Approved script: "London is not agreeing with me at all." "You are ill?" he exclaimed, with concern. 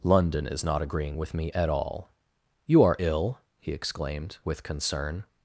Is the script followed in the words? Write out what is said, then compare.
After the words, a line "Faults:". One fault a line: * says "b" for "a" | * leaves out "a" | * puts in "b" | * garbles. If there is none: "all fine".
"London is not agreeing with me at all." "You are ill?" he exclaimed, with concern.
Faults:
all fine